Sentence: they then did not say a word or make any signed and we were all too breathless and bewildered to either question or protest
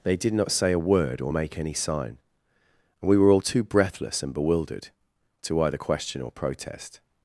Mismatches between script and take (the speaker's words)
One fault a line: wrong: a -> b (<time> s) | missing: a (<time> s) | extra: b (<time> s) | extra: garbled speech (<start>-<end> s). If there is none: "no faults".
missing: then (0.2 s)
wrong: signed -> sign (1.7 s)